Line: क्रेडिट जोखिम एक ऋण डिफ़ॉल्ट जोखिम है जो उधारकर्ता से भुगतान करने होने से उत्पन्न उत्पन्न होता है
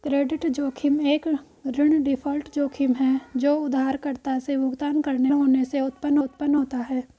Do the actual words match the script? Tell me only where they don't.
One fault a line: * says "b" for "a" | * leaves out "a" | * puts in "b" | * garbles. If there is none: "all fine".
all fine